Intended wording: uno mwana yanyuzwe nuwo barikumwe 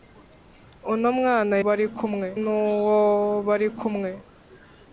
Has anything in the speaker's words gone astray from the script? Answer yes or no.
yes